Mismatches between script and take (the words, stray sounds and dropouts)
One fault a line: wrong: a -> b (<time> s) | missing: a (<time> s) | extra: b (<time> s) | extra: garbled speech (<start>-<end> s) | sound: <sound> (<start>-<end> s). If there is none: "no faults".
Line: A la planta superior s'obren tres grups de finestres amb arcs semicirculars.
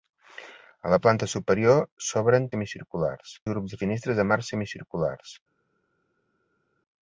wrong: tres -> semicirculars (2.5 s)